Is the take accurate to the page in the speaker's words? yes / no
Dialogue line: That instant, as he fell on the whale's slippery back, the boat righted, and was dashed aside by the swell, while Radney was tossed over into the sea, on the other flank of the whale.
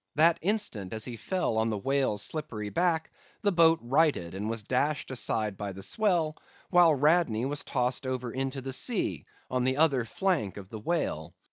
yes